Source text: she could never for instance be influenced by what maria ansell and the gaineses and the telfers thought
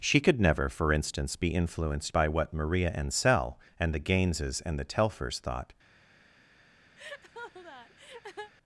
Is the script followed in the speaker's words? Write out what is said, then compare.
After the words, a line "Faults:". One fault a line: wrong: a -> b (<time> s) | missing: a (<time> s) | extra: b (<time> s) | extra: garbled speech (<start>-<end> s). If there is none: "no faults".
she could never for instance be influenced by what maria ansell and the gaineses and the telfers thought
Faults:
no faults